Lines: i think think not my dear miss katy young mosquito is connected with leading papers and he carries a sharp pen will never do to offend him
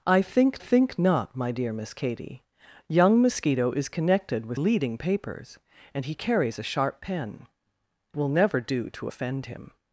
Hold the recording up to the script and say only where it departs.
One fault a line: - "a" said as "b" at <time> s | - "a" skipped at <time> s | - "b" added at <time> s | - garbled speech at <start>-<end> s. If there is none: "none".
none